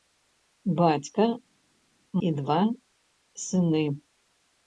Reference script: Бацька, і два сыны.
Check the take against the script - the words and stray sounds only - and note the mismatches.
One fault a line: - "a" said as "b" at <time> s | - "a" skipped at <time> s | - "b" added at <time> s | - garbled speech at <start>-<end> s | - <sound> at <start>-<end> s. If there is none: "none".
none